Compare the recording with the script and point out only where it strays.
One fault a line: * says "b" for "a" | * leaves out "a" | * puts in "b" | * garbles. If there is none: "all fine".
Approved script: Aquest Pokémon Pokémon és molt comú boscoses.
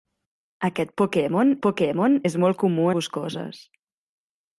all fine